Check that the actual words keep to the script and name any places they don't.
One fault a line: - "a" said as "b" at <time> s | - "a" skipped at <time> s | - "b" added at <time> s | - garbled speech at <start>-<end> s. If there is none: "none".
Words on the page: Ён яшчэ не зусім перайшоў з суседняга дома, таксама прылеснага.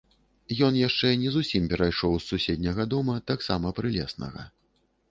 none